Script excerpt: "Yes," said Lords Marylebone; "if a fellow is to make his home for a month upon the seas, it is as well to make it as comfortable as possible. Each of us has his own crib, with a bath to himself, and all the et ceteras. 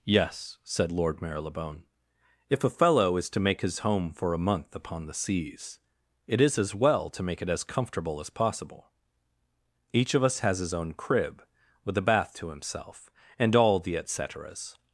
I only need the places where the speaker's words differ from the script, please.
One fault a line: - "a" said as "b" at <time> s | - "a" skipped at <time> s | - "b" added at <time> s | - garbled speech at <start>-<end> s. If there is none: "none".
- "Lords" said as "Lord" at 0.9 s